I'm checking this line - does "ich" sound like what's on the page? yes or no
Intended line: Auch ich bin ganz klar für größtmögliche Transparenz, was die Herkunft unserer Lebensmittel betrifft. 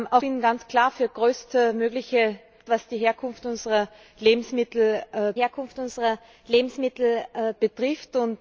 no